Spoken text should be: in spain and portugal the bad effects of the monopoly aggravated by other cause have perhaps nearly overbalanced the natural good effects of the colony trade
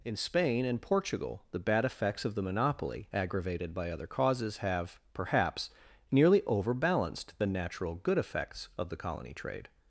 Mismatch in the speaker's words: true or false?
true